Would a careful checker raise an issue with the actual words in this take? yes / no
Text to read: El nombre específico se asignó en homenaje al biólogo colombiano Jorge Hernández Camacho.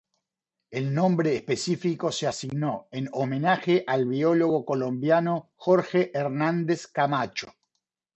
no